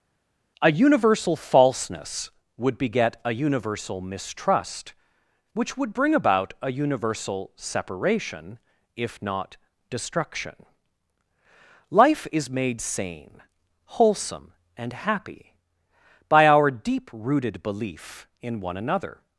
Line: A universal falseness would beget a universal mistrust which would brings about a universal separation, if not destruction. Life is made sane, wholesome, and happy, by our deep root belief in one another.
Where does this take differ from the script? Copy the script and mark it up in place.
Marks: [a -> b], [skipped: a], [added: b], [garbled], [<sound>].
A universal falseness would beget a universal mistrust which would [brings -> bring] about a universal separation, if not destruction. Life is made sane, wholesome, and happy, by our deep [root -> rooted] belief in one another.